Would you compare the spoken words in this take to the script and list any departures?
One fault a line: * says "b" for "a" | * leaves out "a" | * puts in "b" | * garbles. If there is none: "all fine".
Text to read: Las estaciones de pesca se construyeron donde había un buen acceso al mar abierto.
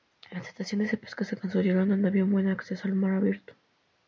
all fine